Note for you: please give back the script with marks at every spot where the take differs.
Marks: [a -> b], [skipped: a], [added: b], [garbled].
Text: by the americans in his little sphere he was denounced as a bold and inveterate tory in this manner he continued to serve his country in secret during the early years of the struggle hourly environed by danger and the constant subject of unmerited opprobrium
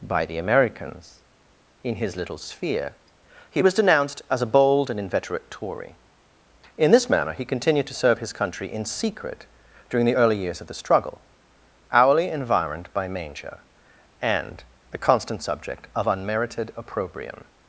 by the americans in his little sphere he was denounced as a bold and inveterate tory in this manner he continued to serve his country in secret during the early years of the struggle hourly environed by [danger -> manger] and the constant subject of unmerited opprobrium